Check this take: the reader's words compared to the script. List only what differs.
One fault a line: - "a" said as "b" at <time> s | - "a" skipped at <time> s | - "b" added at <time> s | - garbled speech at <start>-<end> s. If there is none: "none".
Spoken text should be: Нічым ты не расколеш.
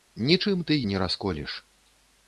none